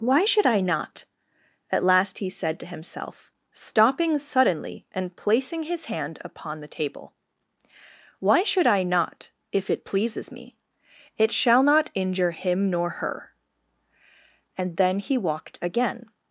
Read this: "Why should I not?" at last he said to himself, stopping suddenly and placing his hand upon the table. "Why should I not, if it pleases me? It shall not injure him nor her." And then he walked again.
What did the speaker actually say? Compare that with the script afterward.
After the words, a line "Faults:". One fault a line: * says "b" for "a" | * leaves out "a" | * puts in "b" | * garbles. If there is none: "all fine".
"Why should I not?" at last he said to himself, stopping suddenly and placing his hand upon the table. "Why should I not, if it pleases me? It shall not injure him nor her." And then he walked again.
Faults:
all fine